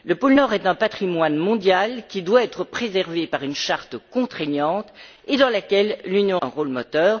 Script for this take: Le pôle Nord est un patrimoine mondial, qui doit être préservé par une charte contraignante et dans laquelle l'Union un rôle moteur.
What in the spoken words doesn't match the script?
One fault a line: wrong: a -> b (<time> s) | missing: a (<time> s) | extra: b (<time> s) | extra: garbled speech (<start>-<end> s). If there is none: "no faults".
no faults